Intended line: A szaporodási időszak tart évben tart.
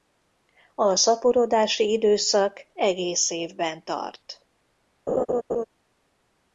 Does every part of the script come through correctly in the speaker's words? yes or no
no